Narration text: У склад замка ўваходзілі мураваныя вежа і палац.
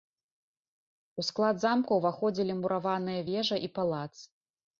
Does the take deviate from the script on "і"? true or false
false